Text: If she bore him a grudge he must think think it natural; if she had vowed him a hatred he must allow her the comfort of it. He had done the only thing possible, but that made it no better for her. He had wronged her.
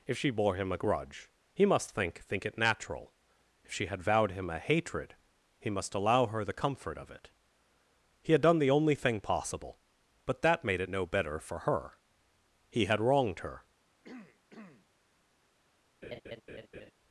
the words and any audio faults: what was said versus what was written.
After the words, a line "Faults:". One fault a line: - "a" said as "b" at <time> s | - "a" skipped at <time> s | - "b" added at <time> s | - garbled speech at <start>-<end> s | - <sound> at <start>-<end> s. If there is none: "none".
If she bore him a grudge he must think think it natural; if she had vowed him a hatred he must allow her the comfort of it. He had done the only thing possible, but that made it no better for her. He had wronged her.
Faults:
- throat clearing at 14.0-14.9 s
- laugh at 16.0-16.9 s